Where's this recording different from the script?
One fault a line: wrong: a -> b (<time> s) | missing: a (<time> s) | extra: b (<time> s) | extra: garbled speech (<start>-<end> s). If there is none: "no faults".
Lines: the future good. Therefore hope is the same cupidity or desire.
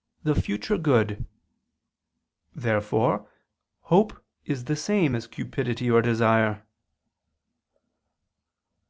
extra: as (5.1 s)